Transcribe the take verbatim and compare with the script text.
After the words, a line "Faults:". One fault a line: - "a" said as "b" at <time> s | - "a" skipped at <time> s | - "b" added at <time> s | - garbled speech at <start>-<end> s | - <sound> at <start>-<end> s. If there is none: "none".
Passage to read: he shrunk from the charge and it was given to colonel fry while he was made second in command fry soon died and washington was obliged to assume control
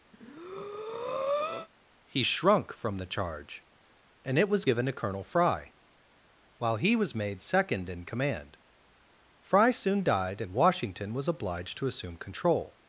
he shrunk from the charge and it was given to colonel fry while he was made second in command fry soon died and washington was obliged to assume control
Faults:
- breath at 0.1-1.7 s